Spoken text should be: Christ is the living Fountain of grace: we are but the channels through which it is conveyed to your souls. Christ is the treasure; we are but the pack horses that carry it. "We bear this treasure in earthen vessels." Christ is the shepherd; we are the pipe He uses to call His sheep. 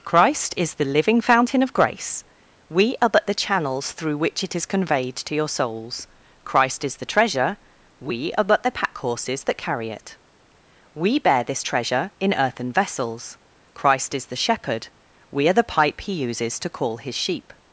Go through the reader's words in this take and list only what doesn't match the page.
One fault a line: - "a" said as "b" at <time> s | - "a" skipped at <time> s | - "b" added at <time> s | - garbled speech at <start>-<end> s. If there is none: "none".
none